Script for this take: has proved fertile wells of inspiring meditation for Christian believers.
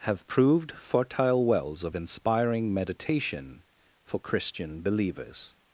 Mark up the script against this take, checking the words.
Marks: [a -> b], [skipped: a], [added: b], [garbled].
[has -> have] proved fertile wells of inspiring meditation for Christian believers.